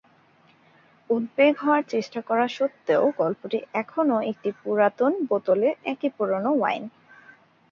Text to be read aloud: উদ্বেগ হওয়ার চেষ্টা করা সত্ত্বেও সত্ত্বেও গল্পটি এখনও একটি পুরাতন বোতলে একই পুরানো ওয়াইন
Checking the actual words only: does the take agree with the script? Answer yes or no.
no